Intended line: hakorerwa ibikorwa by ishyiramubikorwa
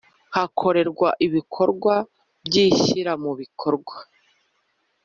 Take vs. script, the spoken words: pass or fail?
pass